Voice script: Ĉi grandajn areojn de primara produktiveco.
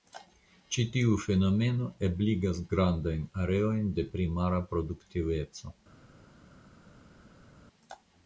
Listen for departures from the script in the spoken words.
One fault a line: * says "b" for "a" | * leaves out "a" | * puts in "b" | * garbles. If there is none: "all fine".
* puts in "tiu fenomeno ebligas"